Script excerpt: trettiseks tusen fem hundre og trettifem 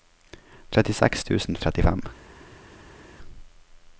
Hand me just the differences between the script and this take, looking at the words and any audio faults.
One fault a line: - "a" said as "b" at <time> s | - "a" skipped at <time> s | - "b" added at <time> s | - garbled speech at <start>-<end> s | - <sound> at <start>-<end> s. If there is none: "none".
- "fem hundre" skipped at 1.6 s